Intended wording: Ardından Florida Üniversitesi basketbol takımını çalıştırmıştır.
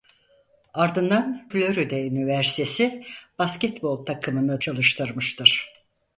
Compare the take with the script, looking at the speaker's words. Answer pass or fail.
pass